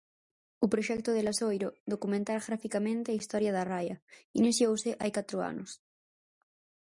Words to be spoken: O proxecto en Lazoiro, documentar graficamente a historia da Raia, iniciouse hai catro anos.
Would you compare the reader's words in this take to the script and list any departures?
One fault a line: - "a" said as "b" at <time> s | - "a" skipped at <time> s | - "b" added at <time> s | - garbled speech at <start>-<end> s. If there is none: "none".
- "en" said as "de" at 1.1 s